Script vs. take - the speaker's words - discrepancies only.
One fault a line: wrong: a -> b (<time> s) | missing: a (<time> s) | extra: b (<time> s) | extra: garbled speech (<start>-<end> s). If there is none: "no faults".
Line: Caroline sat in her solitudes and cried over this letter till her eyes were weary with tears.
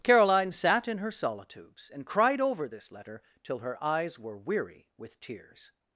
no faults